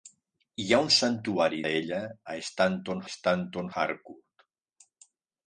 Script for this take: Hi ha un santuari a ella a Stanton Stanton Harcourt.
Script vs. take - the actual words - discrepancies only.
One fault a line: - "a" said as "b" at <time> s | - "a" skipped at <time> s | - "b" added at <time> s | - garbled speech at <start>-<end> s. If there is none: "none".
none